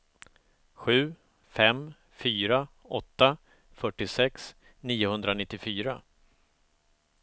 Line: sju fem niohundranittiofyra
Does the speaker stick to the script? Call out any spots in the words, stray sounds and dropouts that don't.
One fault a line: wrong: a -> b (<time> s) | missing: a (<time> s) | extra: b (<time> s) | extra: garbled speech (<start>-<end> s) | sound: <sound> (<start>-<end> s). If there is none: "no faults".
extra: fyra åtta fyrtiosex (2.1 s)